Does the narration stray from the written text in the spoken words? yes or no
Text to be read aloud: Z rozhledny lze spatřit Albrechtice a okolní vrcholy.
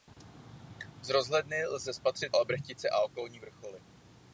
no